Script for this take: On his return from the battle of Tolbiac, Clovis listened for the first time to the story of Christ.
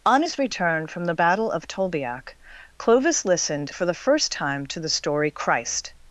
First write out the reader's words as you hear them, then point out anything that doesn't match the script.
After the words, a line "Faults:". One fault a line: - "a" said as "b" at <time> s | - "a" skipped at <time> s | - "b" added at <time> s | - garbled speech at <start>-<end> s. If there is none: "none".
On his return from the battle of Tolbiac, Clovis listened for the first time to the story Christ.
Faults:
- "of" skipped at 5.3 s